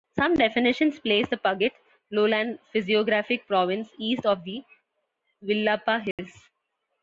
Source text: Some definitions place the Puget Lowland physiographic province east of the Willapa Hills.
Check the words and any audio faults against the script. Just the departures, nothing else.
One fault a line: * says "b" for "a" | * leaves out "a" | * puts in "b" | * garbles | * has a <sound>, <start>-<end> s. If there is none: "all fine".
* has a dropout, 6.1-6.2 s